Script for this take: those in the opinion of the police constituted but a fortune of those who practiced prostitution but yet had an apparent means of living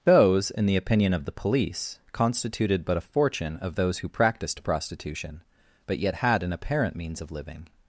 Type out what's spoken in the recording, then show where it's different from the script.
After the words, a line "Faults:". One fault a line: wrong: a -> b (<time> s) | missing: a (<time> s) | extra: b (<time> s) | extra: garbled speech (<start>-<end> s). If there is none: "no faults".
those in the opinion of the police constituted but a fortune of those who practiced prostitution but yet had an apparent means of living
Faults:
no faults